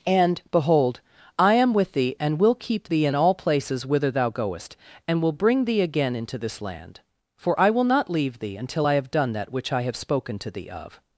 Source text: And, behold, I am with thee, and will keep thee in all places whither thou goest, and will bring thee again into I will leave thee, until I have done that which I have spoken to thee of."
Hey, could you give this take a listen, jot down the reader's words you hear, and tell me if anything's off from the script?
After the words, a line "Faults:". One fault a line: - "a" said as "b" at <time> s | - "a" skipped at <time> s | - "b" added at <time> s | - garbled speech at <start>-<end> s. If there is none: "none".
And, behold, I am with thee, and will keep thee in all places whither thou goest, and will bring thee again into this land; for I will not leave thee, until I have done that which I have spoken to thee of."
Faults:
- "this land for" added at 6.4 s
- "not" added at 7.8 s